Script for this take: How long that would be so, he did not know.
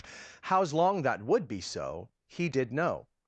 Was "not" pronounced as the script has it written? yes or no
no